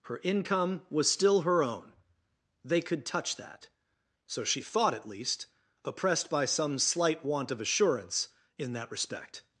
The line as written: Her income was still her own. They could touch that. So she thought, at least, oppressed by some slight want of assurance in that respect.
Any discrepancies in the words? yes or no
no